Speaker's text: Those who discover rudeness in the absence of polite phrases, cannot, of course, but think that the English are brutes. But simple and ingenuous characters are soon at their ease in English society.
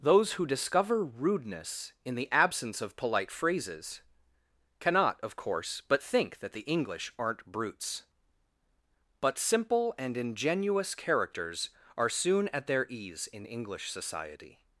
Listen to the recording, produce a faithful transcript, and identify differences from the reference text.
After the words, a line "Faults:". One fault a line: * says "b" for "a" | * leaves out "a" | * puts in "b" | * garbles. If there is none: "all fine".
Those who discover rudeness in the absence of polite phrases, cannot, of course, but think that the English aren't brutes. But simple and ingenuous characters are soon at their ease in English society.
Faults:
* says "aren't" for "are"